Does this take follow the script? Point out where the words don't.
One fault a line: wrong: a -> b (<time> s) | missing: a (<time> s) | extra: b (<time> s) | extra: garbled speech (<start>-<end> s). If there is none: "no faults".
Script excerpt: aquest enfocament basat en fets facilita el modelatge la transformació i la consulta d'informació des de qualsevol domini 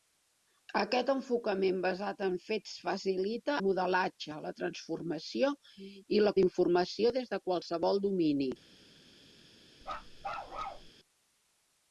missing: el (3.6 s)
missing: consulta (6.3 s)